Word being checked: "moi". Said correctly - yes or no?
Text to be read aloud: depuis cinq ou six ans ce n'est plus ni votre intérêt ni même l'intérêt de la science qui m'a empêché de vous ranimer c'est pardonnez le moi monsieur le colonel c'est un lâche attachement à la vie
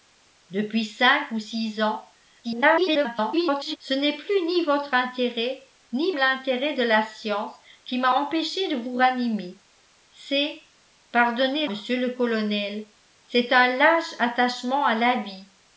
no